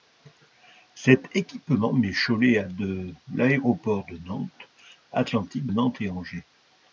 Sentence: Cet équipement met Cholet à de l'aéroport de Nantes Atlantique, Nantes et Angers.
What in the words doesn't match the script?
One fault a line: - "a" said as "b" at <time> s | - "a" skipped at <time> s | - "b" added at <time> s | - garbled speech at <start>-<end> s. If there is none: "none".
none